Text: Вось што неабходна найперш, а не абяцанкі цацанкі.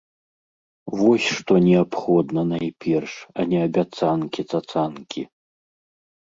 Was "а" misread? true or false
false